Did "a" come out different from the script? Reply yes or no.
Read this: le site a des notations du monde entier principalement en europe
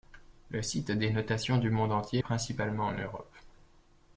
no